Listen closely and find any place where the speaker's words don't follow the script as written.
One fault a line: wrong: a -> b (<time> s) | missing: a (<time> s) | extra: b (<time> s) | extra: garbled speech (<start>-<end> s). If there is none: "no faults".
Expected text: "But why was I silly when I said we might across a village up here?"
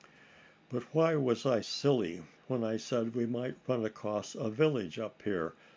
extra: run (3.7 s)